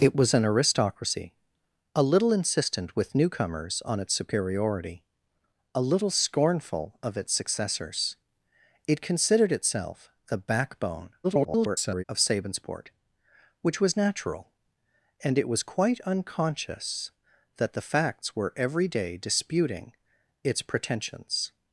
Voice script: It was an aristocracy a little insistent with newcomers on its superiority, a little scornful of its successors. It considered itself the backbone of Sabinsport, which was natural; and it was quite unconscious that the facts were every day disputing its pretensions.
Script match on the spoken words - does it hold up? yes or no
no